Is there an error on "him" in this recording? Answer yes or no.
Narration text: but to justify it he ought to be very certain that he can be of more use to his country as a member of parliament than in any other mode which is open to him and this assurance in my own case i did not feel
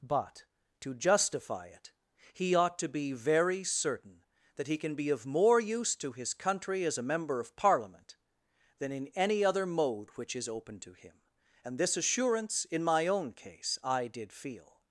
no